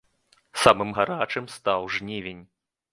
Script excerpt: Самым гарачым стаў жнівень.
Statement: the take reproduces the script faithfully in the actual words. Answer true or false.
true